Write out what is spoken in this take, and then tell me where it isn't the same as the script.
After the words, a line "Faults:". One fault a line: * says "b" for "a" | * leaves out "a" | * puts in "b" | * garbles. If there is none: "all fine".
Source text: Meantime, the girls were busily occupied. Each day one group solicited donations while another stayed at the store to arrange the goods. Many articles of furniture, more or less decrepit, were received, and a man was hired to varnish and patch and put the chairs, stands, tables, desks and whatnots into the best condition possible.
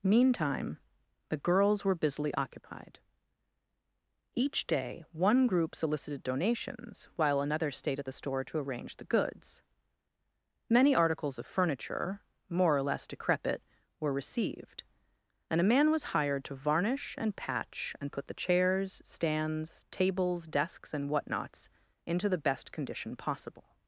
Meantime, the girls were busily occupied. Each day one group solicited donations while another stayed at the store to arrange the goods. Many articles of furniture, more or less decrepit, were received, and a man was hired to varnish and patch and put the chairs, stands, tables, desks and whatnots into the best condition possible.
Faults:
all fine